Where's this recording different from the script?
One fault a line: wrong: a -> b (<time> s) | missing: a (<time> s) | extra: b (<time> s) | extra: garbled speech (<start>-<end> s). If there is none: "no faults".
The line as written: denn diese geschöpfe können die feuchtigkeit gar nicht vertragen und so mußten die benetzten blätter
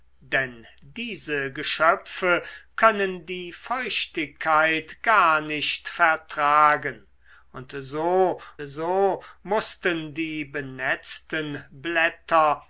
extra: so (8.6 s)